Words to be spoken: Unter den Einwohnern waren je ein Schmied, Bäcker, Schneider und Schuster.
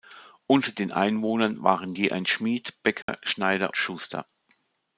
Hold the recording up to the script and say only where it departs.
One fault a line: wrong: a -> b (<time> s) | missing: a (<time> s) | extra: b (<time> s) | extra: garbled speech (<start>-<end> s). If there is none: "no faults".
missing: und (3.8 s)